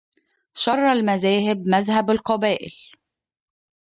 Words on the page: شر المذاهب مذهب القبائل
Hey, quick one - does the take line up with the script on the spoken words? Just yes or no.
yes